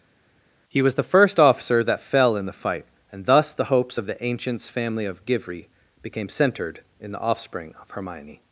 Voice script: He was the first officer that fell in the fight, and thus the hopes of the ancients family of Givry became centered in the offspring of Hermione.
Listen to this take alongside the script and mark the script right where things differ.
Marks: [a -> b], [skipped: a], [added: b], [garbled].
He was the first officer that fell in the fight, and thus the hopes of the ancients family of Givry became centered in the offspring of Hermione.